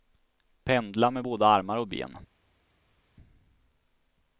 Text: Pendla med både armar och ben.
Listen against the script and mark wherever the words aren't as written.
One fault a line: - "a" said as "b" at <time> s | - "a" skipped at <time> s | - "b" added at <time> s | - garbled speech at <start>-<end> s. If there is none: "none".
none